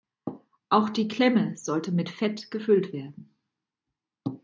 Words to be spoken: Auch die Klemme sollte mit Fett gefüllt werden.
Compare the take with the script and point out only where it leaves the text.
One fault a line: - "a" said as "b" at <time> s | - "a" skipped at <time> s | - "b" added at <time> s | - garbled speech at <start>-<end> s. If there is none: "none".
none